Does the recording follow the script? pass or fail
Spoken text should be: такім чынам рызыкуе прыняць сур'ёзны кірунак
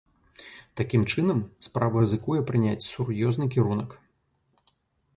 fail